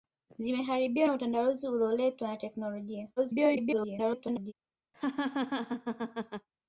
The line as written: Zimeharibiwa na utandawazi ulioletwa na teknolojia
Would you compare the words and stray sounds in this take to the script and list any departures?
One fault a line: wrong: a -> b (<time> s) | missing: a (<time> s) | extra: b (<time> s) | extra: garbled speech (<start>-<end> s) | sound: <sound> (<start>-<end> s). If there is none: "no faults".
extra: garbled speech (3.2-4.5 s)
sound: laugh (4.9-6.5 s)